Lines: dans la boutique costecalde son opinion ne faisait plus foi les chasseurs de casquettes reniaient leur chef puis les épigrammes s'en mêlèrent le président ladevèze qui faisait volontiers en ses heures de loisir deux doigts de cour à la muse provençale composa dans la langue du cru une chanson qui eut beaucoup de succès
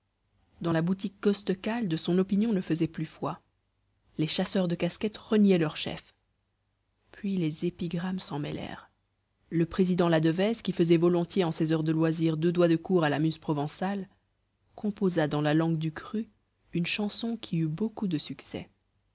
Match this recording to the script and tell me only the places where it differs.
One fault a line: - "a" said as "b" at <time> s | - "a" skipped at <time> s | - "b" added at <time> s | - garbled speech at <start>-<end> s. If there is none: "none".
none